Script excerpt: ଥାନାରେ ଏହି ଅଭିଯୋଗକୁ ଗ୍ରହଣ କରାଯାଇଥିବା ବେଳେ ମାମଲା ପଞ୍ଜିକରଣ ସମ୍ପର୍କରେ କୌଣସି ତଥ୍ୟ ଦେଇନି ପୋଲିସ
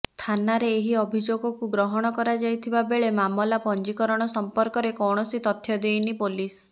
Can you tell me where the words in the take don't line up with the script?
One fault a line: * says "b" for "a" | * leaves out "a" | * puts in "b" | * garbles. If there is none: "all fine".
all fine